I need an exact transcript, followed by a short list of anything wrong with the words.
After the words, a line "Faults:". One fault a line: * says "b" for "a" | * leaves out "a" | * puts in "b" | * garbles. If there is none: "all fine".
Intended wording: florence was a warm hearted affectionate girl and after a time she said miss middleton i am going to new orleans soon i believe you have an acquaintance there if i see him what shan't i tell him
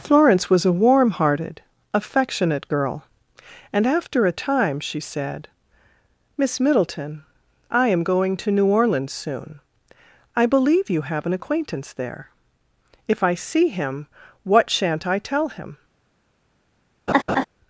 florence was a warm hearted affectionate girl and after a time she said miss middleton i am going to new orleans soon i believe you have an acquaintance there if i see him what shan't i tell him
Faults:
all fine